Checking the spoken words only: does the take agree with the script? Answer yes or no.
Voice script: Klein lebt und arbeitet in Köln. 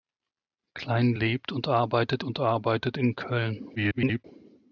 no